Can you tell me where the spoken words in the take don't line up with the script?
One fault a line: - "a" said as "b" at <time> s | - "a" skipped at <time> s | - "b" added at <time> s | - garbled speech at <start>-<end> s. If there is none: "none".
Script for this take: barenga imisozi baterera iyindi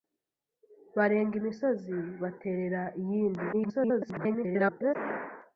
- garbled speech at 3.5-5.0 s